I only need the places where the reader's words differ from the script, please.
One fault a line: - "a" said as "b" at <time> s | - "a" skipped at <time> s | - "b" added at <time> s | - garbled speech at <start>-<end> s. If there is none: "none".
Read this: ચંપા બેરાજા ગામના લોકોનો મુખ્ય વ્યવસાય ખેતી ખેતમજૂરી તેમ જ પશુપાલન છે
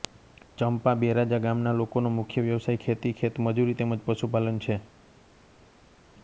none